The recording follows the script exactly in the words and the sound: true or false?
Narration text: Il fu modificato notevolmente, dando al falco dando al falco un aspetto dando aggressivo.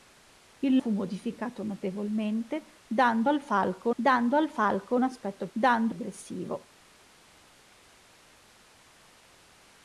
true